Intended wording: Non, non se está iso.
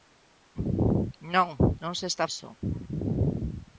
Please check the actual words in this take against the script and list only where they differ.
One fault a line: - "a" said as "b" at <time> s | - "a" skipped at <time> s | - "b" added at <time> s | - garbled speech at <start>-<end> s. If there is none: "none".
none